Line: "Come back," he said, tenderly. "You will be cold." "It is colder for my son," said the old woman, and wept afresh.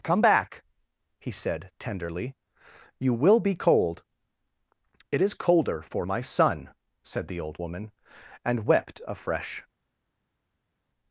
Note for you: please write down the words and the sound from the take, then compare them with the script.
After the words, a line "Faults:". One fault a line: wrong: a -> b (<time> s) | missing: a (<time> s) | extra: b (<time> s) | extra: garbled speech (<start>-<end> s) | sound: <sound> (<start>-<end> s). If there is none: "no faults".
"Come back," he said, tenderly. "You will be cold." "It is colder for my son," said the old woman, and wept afresh.
Faults:
no faults